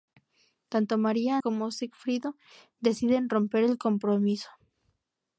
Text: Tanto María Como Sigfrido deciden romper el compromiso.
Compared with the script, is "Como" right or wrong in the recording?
right